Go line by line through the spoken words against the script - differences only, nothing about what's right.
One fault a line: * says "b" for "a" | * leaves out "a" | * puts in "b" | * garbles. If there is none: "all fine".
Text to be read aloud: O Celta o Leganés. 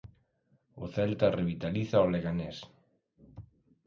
* puts in "revitaliza"